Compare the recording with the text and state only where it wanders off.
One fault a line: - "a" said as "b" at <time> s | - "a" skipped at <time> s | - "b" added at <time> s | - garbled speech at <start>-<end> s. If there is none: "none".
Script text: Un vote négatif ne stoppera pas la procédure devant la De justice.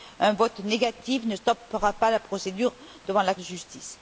none